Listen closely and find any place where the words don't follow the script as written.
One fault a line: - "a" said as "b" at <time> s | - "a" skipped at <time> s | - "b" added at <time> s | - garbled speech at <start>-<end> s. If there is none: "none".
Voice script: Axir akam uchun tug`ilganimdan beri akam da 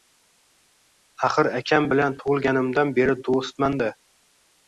- "uchun" said as "bilan" at 1.9 s
- "akam" said as "do`stman" at 3.3 s